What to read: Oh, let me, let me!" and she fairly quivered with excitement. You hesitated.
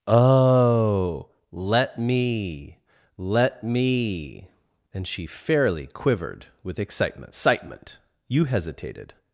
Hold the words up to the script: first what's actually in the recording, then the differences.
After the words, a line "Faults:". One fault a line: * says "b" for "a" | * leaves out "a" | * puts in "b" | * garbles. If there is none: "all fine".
Oh, let me, let me!" and she fairly quivered with excitement excitement. You hesitated.
Faults:
* puts in "excitement"